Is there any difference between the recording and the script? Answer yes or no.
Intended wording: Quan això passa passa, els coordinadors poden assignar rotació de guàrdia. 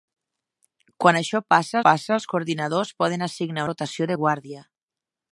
no